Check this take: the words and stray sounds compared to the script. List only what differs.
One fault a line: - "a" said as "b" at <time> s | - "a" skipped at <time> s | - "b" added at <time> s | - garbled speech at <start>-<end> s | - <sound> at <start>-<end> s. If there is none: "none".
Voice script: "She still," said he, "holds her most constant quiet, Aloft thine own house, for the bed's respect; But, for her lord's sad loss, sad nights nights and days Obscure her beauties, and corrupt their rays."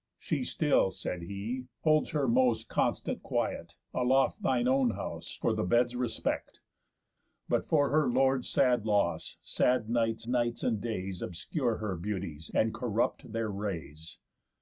none